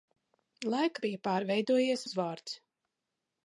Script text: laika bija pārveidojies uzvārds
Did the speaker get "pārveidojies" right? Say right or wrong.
right